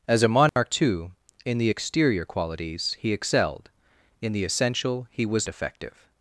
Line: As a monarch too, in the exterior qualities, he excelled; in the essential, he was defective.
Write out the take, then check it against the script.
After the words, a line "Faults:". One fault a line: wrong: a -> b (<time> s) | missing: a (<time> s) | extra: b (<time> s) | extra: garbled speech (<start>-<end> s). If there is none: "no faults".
As a monarch too, in the exterior qualities, he excelled; in the essential, he was defective.
Faults:
no faults